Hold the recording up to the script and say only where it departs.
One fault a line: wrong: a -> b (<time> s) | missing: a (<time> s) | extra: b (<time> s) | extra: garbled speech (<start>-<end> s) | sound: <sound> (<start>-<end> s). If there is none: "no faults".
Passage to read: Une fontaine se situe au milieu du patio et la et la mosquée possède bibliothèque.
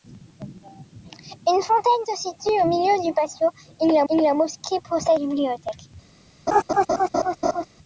sound: laugh (6.5-7.7 s)